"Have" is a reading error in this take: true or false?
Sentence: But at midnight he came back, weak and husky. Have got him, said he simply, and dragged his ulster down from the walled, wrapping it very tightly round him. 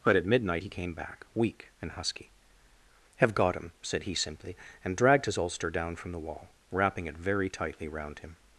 false